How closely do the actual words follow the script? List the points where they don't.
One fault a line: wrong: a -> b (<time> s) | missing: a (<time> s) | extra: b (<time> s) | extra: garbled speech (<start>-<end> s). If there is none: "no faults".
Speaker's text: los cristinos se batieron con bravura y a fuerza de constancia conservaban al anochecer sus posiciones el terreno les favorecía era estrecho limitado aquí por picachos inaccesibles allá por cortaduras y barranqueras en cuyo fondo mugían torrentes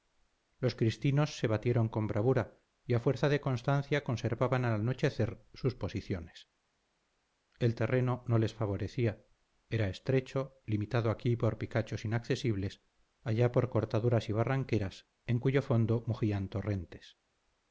extra: no (8.3 s)